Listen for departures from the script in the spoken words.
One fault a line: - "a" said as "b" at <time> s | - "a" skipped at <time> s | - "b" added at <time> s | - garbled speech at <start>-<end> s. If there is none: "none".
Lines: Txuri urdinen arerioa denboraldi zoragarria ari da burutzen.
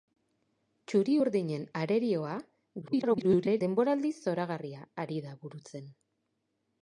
- garbled speech at 2.8-3.6 s